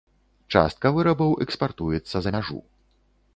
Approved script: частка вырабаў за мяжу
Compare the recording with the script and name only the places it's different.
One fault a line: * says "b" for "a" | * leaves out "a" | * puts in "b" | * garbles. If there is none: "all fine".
* puts in "экспартуецца"